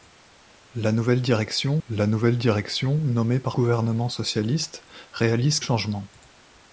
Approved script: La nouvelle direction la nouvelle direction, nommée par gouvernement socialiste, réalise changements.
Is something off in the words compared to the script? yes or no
no